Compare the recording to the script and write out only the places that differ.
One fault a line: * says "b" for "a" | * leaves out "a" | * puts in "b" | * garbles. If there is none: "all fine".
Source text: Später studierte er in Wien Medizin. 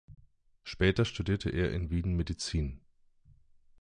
all fine